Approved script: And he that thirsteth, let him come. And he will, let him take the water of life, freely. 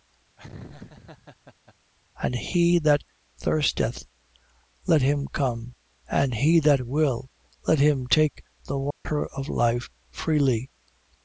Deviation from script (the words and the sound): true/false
true